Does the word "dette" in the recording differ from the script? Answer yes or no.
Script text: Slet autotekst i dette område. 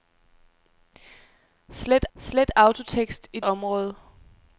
yes